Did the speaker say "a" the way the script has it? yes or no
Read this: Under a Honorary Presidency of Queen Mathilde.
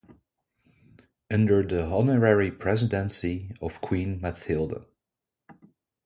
no